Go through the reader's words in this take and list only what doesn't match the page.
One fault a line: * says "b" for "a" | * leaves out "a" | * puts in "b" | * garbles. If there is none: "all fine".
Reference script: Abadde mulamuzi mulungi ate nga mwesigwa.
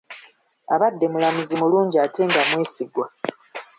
all fine